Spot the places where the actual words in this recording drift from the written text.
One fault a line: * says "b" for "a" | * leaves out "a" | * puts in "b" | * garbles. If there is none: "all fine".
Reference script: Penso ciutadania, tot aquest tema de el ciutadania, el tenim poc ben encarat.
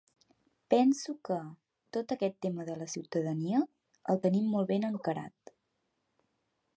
* says "que" for "ciutadania"
* says "la" for "el"
* says "molt" for "poc"